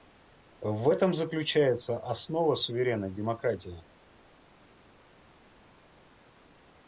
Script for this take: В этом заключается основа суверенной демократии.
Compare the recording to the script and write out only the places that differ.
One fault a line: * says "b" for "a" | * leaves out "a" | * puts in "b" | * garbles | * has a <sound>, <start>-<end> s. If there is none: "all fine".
all fine